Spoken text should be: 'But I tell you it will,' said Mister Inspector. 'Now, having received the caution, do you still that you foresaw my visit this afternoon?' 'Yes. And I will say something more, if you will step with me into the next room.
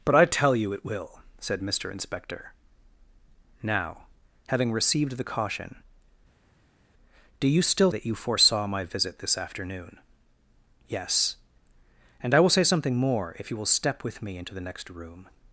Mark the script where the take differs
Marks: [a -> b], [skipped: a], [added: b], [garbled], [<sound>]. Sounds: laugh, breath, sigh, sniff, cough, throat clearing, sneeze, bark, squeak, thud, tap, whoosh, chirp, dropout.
'But I tell you it will,' said Mister Inspector. 'Now, having received the caution, do you still that you foresaw my visit this afternoon?' 'Yes. And I will say something more, if you will step with me into the next room.